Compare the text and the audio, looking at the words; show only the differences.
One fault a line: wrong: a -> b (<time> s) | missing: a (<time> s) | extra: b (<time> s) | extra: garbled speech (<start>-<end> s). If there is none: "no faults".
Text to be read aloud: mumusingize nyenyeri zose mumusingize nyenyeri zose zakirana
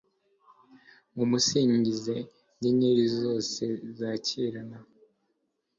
missing: mumusingize nyenyeri zose (3.6 s)